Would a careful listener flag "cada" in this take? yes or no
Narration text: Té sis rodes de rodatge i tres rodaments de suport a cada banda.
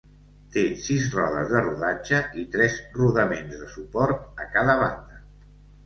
no